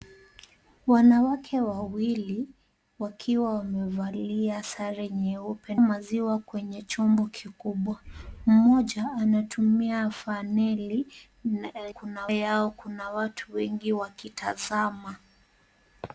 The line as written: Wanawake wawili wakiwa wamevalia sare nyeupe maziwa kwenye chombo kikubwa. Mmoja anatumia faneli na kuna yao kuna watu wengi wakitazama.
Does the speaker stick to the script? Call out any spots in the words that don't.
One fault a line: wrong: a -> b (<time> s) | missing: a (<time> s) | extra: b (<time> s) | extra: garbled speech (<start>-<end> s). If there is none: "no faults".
no faults